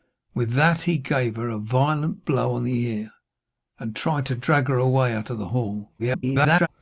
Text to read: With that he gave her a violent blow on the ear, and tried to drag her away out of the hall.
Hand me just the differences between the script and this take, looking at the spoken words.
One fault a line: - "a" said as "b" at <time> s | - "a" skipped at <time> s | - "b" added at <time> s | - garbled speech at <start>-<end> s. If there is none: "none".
- garbled speech at 6.0-6.7 s